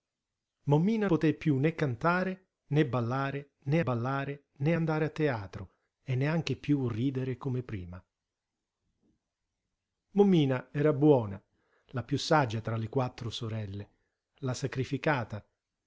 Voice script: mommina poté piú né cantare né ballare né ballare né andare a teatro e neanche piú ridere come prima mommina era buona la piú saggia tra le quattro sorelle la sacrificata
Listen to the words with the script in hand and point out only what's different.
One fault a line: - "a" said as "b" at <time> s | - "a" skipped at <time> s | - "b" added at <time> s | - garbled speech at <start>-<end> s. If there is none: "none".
none